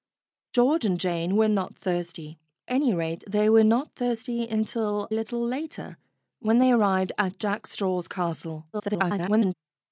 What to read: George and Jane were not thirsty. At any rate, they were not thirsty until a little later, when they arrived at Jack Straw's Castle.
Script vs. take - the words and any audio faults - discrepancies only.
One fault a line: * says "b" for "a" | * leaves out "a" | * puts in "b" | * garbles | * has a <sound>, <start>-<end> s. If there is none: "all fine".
* leaves out "At"
* leaves out "a"
* garbles